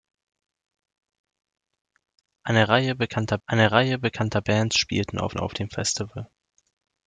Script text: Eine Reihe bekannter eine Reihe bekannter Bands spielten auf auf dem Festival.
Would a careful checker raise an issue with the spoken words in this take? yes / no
no